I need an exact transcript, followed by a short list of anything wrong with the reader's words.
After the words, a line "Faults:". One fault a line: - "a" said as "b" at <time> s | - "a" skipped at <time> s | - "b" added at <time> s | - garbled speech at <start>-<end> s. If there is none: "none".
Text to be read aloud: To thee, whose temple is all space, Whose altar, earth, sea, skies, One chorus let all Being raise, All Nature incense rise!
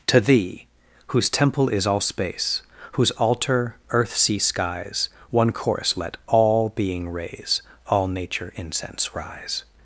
To thee, whose temple is all space, Whose altar, earth, sea, skies, One chorus let all Being raise, All Nature incense rise!
Faults:
none